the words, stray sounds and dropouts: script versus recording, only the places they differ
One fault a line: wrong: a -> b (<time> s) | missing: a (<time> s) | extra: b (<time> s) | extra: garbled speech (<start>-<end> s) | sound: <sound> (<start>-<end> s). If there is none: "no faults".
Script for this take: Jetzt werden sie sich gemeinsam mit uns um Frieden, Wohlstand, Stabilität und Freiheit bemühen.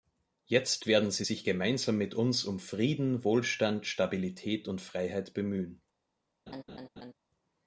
sound: laugh (6.5-7.1 s)